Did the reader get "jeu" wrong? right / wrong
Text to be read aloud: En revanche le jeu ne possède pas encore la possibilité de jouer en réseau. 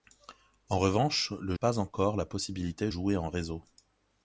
wrong